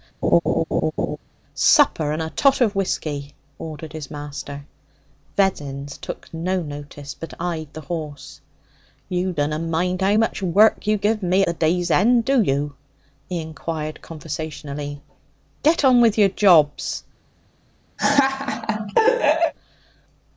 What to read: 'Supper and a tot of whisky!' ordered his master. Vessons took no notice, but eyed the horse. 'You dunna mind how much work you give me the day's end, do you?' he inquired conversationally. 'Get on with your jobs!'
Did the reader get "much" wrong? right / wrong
right